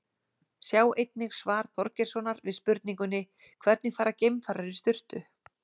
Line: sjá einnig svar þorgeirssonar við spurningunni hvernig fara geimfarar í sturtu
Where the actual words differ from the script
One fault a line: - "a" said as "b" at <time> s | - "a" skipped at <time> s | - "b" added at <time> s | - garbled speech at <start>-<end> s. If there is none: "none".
none